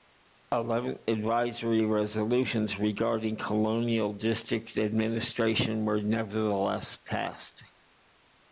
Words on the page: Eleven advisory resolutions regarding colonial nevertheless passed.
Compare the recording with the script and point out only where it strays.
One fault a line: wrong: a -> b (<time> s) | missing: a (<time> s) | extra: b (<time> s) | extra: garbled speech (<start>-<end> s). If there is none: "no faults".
extra: district administration were (4.1 s)